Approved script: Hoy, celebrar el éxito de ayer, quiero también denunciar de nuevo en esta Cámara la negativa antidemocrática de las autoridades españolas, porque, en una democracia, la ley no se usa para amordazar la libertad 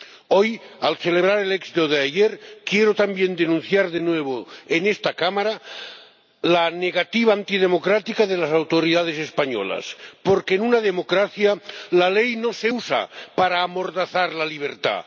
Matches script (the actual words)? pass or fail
fail